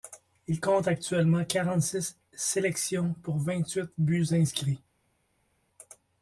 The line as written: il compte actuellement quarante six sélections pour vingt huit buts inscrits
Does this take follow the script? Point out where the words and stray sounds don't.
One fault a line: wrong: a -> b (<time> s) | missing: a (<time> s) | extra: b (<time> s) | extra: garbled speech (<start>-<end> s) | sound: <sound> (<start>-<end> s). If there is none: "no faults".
no faults